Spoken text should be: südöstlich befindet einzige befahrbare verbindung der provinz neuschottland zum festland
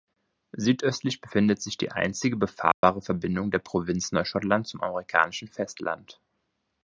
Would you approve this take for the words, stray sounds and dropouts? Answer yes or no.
no